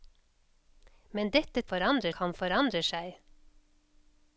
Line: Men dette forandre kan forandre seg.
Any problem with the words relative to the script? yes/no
no